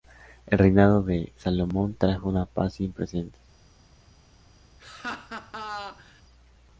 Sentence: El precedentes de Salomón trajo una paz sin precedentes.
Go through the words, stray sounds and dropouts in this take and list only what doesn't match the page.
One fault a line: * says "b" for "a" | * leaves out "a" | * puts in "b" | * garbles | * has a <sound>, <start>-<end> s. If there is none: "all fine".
* says "reinado" for "precedentes"
* has a laugh, 4.8-6.2 s